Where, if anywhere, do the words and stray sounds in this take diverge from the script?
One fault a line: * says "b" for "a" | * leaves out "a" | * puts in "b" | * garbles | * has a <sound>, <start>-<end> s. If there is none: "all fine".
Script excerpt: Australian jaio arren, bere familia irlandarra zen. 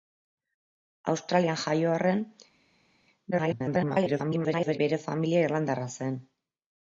* garbles